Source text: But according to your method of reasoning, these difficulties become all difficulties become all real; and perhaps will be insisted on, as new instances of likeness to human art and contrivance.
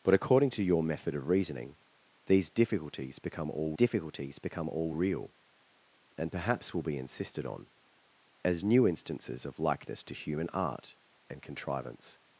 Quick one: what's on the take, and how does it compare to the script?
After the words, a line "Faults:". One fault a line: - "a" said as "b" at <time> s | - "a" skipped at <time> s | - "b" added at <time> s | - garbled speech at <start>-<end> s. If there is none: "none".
But according to your method of reasoning, these difficulties become all difficulties become all real; and perhaps will be insisted on, as new instances of likeness to human art and contrivance.
Faults:
none